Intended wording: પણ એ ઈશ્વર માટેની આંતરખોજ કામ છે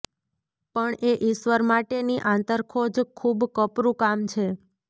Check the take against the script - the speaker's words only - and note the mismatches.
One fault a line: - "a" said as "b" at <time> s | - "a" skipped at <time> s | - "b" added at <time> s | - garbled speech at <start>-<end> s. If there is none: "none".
- "ખૂબ કપરું" added at 3.2 s